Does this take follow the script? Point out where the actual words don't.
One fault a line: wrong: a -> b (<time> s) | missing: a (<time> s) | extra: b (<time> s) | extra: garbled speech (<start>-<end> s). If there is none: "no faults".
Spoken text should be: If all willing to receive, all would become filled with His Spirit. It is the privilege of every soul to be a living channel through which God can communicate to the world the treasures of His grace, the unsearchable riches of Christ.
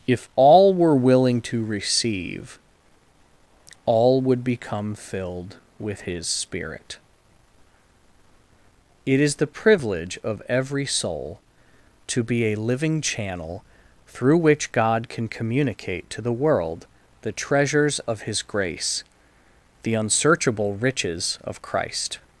extra: were (0.7 s)